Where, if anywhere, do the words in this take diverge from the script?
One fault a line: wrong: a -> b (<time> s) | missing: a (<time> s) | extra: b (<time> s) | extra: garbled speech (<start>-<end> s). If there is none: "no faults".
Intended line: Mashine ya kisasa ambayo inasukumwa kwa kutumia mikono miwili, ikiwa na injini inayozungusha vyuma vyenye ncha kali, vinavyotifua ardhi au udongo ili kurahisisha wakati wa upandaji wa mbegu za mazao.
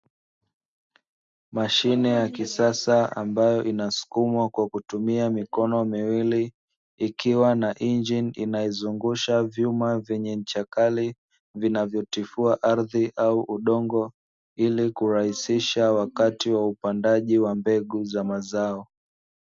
no faults